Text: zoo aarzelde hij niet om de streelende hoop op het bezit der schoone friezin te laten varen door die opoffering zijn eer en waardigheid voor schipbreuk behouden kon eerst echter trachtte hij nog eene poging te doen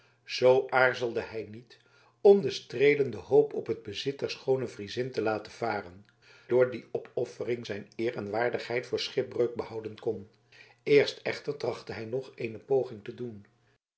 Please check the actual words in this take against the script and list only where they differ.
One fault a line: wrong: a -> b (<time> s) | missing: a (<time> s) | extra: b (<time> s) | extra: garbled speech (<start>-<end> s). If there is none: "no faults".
no faults